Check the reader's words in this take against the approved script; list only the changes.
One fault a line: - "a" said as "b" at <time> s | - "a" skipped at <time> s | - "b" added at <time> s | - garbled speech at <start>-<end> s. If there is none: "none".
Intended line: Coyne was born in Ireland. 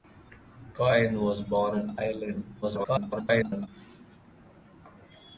- garbled speech at 2.6-3.7 s